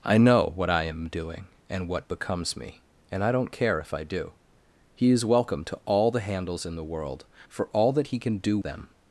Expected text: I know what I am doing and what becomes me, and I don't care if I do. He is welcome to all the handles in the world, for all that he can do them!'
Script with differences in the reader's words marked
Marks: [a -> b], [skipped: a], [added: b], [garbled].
I know what I am doing and what becomes me, and I don't care if I do. He is welcome to all the handles in the world, for all that he can do them!'